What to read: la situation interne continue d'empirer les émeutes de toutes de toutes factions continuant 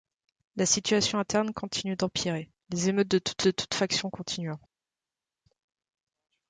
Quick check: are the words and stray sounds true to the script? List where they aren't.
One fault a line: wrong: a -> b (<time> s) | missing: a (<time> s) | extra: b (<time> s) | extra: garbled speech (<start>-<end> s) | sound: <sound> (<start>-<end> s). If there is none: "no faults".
no faults